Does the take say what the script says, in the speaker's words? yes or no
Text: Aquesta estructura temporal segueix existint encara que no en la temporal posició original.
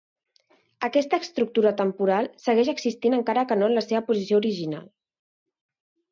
no